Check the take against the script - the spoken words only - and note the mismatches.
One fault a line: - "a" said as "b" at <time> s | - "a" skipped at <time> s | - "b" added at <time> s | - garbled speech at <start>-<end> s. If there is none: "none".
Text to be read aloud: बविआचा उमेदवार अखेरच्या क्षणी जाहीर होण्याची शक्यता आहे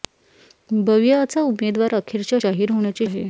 - "क्षणी" skipped at 2.4 s
- "शक्यता" skipped at 3.1 s